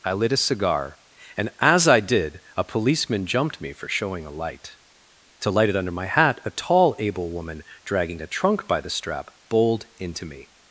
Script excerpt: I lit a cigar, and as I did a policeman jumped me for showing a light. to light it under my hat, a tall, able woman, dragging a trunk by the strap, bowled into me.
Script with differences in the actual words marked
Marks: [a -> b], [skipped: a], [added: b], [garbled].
I lit a cigar, and as I did a policeman jumped me for showing a light. to light it under my hat, a tall, able woman, dragging a trunk by the strap, bowled into me.